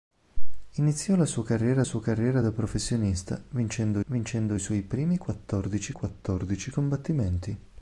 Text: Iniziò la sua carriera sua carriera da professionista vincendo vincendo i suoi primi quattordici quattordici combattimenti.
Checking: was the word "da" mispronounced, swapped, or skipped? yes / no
no